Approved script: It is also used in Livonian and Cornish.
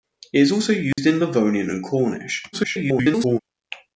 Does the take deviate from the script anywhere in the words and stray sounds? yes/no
yes